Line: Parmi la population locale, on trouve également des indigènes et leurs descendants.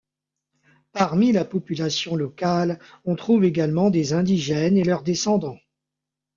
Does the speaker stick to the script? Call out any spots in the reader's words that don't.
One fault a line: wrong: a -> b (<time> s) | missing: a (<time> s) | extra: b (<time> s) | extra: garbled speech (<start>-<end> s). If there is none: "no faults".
no faults